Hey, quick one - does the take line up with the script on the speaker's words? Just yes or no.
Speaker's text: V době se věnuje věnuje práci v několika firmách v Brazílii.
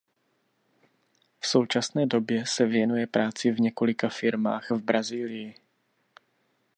no